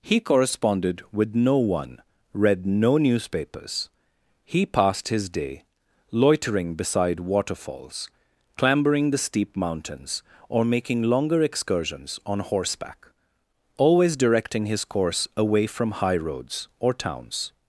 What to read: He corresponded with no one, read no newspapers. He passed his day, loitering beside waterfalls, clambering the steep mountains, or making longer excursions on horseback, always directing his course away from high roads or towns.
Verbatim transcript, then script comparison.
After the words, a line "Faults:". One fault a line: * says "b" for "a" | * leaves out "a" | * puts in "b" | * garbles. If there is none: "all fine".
He corresponded with no one, read no newspapers. He passed his day, loitering beside waterfalls, clambering the steep mountains, or making longer excursions on horseback, always directing his course away from high roads or towns.
Faults:
all fine